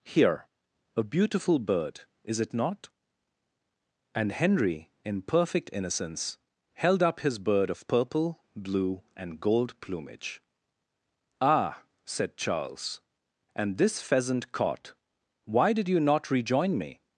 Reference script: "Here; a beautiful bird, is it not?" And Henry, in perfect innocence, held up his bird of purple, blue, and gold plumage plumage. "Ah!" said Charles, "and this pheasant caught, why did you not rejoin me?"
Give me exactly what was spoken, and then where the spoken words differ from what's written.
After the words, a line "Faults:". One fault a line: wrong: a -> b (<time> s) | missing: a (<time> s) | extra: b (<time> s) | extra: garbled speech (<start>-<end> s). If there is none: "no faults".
"Here; a beautiful bird, is it not?" And Henry, in perfect innocence, held up his bird of purple, blue, and gold plumage. "Ah!" said Charles, "and this pheasant caught, why did you not rejoin me?"
Faults:
missing: plumage (10.4 s)